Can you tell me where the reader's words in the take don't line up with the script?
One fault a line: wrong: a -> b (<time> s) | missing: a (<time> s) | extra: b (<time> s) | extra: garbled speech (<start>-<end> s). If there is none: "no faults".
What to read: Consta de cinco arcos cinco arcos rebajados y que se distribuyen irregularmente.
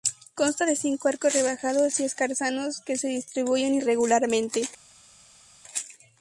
missing: cinco arcos (1.3 s)
extra: escarzanos (2.0 s)